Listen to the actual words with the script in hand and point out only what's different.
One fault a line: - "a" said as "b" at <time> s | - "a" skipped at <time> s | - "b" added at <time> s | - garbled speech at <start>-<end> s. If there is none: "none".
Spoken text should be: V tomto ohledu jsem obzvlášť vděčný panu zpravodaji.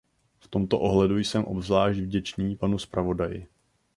none